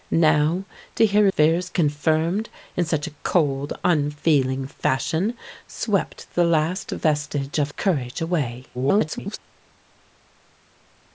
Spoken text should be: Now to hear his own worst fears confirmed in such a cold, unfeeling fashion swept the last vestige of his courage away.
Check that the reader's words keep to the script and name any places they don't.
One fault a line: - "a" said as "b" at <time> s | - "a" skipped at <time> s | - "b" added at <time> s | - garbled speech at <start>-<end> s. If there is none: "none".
- "his own worst" skipped at 1.3 s
- "his" skipped at 7.7 s
- garbled speech at 8.7-9.4 s